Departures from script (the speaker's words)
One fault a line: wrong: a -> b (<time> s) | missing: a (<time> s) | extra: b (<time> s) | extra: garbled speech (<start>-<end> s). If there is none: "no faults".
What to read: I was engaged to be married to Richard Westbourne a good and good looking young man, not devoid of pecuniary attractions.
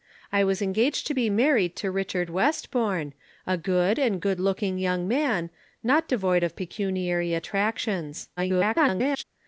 extra: garbled speech (8.4-9.2 s)